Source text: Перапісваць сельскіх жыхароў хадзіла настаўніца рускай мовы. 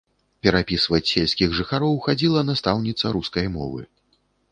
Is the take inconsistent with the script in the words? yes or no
no